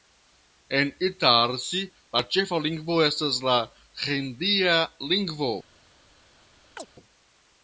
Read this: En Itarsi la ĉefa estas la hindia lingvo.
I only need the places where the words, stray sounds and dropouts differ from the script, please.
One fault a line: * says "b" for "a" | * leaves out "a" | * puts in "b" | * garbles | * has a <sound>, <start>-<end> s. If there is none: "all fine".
* puts in "lingvo"
* has a chirp, 6.8-6.9 s